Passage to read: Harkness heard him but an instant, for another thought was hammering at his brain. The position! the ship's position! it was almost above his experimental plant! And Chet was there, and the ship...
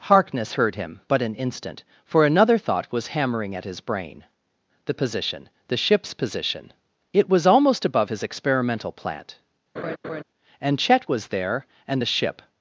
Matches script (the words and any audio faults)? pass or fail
fail